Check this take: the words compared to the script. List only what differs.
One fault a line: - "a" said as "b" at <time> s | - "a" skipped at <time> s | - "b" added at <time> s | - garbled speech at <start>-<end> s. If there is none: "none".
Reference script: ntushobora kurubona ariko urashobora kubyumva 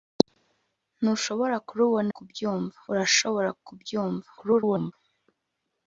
- "ariko" said as "kubyumva" at 2.1 s
- garbled speech at 4.4-4.9 s